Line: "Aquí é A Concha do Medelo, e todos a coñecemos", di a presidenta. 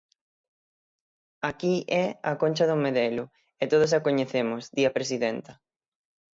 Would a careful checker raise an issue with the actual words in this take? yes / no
no